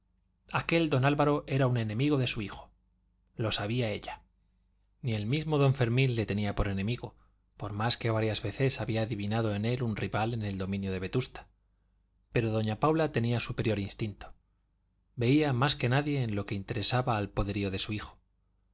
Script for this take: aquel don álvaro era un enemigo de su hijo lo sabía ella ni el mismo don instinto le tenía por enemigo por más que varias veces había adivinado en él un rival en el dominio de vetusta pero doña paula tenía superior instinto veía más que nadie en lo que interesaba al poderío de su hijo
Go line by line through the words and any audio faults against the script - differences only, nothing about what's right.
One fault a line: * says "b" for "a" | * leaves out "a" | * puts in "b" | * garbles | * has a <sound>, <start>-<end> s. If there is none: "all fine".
* says "fermín" for "instinto"